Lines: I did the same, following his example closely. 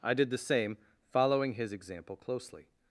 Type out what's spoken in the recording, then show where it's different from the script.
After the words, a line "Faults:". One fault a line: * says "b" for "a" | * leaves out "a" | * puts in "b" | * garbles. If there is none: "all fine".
I did the same, following his example closely.
Faults:
all fine